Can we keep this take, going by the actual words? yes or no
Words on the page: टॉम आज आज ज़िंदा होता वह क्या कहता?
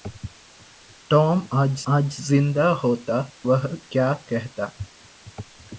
yes